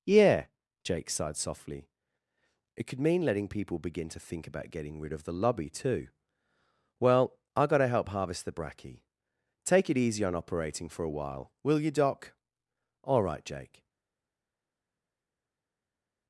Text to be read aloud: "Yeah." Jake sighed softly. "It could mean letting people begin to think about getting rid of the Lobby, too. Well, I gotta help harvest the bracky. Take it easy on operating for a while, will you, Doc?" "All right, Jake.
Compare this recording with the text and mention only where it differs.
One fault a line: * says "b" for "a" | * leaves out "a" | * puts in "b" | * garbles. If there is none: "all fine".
all fine